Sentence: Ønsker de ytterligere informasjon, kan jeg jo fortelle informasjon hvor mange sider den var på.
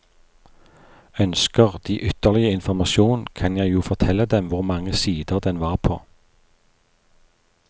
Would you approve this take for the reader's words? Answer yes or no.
no